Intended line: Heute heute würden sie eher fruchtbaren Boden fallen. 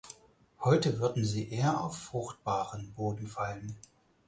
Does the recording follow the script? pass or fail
fail